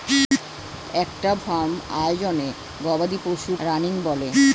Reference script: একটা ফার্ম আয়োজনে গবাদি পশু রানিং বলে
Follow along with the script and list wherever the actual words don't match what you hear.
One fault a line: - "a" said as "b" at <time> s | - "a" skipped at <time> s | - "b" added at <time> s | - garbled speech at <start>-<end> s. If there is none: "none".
none